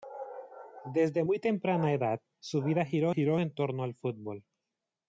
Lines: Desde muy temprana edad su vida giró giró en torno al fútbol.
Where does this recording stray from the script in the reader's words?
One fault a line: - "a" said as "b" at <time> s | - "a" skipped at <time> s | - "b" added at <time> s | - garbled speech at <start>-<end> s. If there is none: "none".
none